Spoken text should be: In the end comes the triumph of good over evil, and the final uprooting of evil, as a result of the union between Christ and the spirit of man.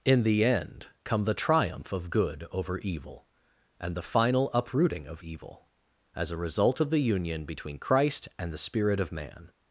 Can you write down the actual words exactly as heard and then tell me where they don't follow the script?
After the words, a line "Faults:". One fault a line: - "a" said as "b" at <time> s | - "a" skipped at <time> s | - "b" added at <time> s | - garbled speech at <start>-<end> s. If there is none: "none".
In the end come the triumph of good over evil, and the final uprooting of evil, as a result of the union between Christ and the spirit of man.
Faults:
- "comes" said as "come" at 1.0 s